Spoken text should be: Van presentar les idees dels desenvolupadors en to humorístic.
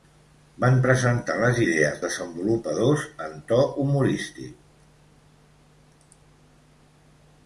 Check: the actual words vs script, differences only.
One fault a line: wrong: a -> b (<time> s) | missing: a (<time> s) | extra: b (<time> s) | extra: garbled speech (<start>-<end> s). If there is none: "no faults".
missing: dels (2.0 s)